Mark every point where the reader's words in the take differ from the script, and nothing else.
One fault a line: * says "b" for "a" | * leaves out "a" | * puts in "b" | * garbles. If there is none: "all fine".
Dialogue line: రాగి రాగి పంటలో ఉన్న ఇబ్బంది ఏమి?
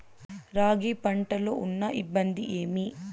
* leaves out "రాగి"